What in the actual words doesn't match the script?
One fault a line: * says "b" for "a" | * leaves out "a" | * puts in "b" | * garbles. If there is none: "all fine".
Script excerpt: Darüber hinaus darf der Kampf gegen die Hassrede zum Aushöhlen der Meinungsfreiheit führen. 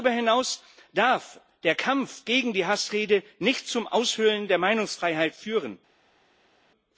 * puts in "nicht"